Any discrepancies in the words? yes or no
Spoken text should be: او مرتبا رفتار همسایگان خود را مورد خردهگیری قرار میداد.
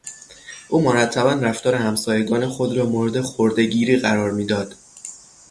no